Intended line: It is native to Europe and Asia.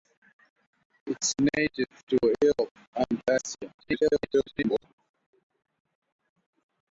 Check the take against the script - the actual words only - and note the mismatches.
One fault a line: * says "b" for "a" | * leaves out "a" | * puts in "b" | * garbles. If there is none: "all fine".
* garbles